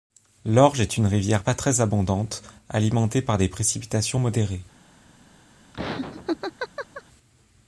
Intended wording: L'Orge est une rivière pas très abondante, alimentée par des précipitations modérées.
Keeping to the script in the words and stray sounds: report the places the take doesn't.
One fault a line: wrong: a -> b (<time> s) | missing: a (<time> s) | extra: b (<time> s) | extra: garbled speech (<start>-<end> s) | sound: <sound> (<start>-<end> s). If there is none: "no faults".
sound: laugh (5.7-7.0 s)